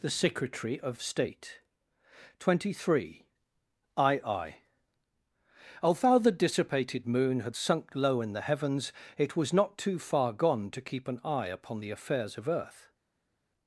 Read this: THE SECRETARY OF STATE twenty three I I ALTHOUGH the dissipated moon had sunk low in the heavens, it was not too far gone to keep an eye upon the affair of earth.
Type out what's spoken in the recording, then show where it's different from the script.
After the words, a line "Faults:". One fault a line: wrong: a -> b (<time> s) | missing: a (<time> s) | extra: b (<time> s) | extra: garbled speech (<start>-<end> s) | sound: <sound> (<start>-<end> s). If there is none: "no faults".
THE SECRETARY OF STATE twenty three I I ALTHOUGH the dissipated moon had sunk low in the heavens, it was not too far gone to keep an eye upon the affairs of earth.
Faults:
wrong: affair -> affairs (11.9 s)